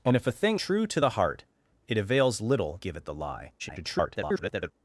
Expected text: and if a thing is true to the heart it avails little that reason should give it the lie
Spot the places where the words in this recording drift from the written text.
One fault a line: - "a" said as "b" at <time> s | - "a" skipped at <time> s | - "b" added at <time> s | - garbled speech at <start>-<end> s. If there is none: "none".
- "is" skipped at 0.6 s
- "that reason should" skipped at 2.8 s
- garbled speech at 3.6-4.7 s